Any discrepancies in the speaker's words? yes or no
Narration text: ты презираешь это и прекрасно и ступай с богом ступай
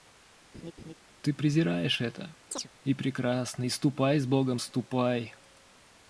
no